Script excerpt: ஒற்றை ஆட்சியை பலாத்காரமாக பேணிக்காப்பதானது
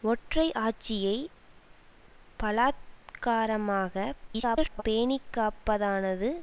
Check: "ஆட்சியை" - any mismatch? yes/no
no